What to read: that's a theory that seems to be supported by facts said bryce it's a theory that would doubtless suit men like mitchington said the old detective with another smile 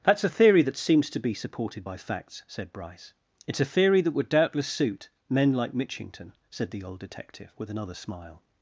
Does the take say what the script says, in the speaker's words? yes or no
yes